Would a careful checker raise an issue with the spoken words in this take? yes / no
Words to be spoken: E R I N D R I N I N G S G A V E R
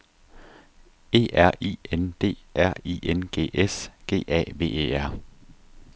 yes